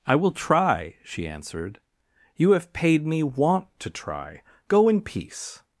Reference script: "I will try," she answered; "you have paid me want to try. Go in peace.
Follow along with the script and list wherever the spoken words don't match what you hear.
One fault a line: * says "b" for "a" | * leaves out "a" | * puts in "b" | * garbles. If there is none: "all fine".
all fine